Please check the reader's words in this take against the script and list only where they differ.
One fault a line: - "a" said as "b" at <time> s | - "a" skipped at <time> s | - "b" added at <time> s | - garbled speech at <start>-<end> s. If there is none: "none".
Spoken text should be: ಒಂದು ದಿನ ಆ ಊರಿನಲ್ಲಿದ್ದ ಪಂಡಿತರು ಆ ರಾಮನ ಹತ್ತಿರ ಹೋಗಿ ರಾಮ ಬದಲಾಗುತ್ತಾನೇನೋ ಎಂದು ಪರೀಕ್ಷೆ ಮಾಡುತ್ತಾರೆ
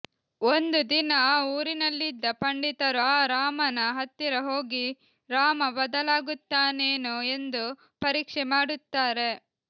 none